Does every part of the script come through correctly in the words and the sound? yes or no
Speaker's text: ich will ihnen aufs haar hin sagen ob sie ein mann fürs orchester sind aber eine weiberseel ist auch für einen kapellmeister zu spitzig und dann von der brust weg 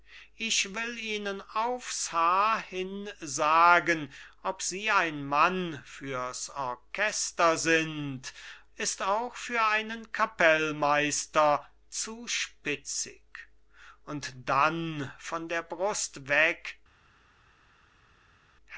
no